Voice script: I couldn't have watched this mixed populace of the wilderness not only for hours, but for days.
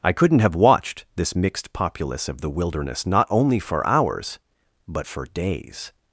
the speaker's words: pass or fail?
pass